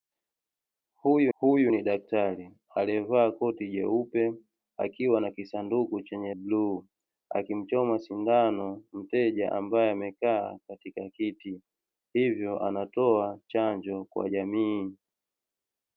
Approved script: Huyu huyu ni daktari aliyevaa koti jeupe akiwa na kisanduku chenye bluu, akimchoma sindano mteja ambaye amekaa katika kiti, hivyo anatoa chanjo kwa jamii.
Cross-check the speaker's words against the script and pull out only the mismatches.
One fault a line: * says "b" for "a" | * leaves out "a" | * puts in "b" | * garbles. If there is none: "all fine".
all fine